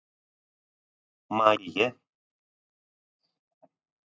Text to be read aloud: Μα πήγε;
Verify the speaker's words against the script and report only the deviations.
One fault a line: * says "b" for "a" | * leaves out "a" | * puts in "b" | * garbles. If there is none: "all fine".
all fine